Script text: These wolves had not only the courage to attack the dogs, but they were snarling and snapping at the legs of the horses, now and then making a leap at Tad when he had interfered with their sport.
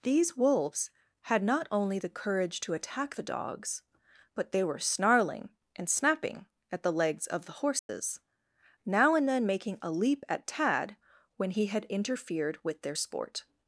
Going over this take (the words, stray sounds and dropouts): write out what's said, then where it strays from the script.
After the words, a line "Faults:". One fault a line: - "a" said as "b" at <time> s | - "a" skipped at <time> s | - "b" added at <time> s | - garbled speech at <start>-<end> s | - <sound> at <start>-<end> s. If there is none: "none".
These wolves had not only the courage to attack the dogs, but they were snarling and snapping at the legs of the horses, now and then making a leap at Tad when he had interfered with their sport.
Faults:
- dropout at 7.8-7.9 s